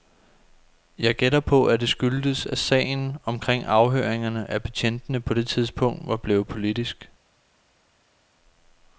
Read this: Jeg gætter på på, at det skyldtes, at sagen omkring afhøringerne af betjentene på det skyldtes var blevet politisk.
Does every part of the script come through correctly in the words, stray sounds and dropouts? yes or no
no